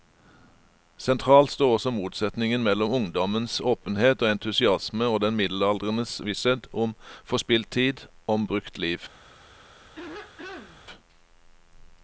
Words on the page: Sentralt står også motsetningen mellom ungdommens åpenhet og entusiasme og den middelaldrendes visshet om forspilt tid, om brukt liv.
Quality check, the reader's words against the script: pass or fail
pass